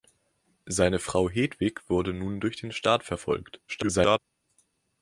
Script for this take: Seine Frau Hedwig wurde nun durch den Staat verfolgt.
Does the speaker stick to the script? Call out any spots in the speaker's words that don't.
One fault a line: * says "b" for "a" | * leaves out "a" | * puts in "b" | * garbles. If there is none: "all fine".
* garbles